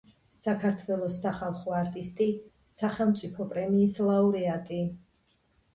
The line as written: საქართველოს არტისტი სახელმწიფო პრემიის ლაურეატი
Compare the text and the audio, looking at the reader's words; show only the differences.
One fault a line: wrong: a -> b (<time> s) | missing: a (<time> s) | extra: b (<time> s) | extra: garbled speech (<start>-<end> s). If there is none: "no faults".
extra: სახალხო (1.2 s)